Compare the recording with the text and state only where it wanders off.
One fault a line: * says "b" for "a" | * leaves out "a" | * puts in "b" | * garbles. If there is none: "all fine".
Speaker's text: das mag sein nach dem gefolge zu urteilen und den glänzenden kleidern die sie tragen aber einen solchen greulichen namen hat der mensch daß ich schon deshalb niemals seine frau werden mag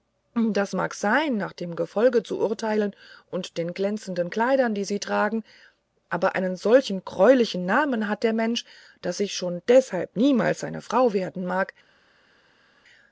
all fine